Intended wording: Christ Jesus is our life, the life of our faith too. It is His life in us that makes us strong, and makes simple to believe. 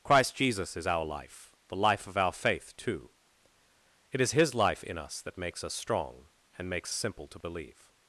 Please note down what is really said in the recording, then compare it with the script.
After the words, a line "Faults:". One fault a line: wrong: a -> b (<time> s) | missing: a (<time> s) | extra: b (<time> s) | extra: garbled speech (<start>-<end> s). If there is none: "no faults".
Christ Jesus is our life, the life of our faith too. It is His life in us that makes us strong, and makes simple to believe.
Faults:
no faults